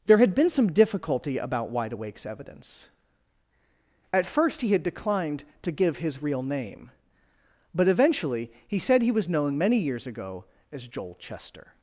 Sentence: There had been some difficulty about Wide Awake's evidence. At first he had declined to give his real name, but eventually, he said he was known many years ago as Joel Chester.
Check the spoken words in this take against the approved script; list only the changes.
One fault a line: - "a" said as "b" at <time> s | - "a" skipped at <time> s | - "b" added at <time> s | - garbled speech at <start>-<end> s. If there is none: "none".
none